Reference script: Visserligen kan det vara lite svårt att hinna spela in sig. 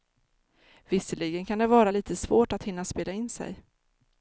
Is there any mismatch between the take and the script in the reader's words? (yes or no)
no